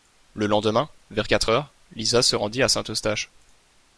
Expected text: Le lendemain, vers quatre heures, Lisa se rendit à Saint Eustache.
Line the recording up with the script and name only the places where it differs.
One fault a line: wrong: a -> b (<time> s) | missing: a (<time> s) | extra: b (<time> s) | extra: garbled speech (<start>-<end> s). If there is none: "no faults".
no faults